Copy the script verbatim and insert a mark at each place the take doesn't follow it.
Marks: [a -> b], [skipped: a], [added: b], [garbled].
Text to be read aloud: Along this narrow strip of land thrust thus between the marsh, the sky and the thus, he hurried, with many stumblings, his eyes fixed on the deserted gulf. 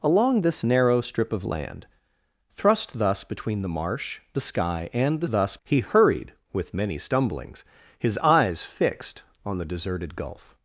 Along this narrow strip of land thrust thus between the marsh, the sky and the thus, he hurried, with many stumblings, his eyes fixed on the deserted gulf.